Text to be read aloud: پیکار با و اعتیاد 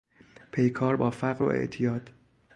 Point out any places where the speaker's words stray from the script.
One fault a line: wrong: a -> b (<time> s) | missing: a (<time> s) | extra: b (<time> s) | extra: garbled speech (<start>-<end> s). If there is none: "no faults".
extra: فقر (1.1 s)